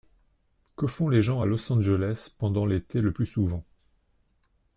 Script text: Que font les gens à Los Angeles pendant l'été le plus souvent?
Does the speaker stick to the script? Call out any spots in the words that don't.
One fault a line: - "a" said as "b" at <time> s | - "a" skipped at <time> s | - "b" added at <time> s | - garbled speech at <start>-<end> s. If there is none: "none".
none